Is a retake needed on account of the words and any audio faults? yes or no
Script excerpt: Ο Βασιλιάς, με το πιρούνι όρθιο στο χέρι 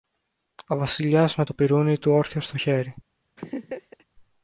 yes